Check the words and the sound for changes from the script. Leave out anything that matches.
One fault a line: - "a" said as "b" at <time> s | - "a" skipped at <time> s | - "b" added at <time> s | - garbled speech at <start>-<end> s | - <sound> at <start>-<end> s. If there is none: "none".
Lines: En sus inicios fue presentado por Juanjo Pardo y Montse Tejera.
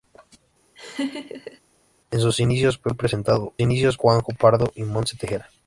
- laugh at 0.8-1.6 s
- "por" said as "inicios" at 3.6 s